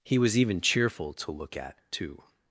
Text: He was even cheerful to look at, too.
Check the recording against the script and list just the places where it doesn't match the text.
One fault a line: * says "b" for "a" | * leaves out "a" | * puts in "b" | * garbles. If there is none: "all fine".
all fine